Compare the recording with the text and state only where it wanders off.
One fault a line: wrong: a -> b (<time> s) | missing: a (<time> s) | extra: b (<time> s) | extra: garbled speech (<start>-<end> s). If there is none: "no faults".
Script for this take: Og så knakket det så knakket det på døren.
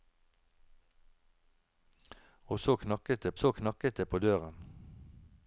no faults